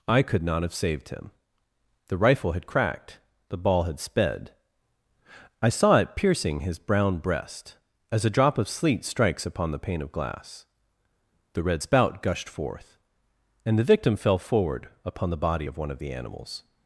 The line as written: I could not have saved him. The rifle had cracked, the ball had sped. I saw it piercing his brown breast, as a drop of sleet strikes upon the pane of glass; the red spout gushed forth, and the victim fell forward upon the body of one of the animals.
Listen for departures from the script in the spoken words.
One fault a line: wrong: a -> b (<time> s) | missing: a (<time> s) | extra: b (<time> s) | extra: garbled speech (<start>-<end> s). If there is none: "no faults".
no faults